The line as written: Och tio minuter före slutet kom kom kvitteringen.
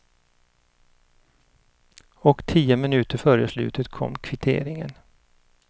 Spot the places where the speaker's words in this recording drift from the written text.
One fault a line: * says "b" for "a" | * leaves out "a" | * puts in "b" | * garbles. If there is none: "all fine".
* leaves out "kom"